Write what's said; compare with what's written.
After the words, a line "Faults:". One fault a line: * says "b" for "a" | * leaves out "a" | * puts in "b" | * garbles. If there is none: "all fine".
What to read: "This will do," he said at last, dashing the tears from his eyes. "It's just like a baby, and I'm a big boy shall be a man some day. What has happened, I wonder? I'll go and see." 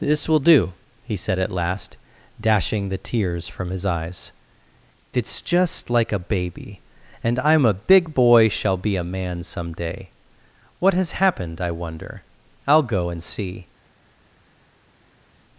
"This will do," he said at last, dashing the tears from his eyes. "It's just like a baby, and I'm a big boy shall be a man some day. What has happened, I wonder? I'll go and see."
Faults:
all fine